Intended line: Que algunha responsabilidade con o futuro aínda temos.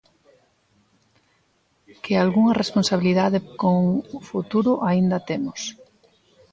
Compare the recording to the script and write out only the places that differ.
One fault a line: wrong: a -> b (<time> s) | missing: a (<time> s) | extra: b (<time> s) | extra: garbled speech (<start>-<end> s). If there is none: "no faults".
no faults